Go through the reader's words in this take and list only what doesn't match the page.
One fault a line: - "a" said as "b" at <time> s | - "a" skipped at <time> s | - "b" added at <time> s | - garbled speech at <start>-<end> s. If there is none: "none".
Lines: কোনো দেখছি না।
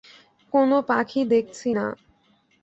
- "পাখি" added at 0.9 s